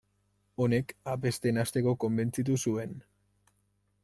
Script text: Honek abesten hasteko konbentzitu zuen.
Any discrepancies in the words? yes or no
no